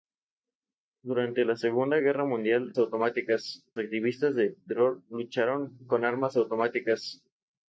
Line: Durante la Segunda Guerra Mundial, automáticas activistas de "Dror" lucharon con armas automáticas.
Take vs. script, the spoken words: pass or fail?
pass